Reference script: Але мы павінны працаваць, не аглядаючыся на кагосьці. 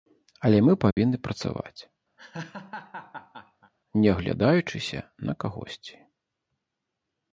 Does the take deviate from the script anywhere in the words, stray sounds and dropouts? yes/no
yes